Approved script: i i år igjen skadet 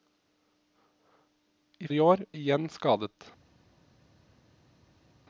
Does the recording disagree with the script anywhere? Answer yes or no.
no